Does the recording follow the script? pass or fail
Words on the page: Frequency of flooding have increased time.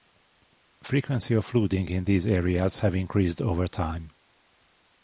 fail